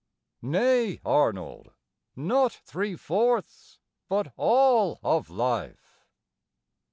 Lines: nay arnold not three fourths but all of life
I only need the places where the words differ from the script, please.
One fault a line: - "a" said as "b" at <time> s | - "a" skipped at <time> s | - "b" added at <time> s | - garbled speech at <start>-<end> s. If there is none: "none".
none